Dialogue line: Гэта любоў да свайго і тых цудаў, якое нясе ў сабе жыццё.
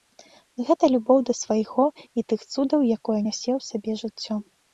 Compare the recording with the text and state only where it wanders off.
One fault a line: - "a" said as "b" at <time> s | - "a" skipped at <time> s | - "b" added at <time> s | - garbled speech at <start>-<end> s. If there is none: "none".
none